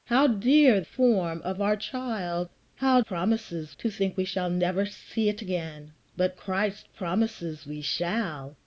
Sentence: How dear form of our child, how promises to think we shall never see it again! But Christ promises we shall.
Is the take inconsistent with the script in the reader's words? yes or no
no